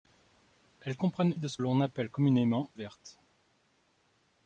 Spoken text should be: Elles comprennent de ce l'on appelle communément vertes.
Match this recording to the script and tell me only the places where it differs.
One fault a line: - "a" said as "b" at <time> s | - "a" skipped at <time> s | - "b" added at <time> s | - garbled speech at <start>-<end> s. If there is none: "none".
none